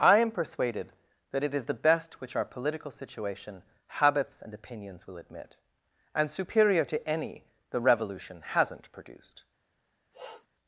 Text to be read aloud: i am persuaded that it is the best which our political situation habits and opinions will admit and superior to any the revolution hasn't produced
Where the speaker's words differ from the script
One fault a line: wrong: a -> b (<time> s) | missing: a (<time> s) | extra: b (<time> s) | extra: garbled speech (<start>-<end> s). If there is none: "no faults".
no faults